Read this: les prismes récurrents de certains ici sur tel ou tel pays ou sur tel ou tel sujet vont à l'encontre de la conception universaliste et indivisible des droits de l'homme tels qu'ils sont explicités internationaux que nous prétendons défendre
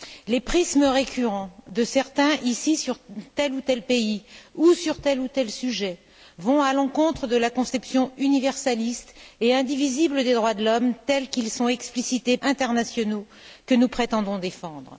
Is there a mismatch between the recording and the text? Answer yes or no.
no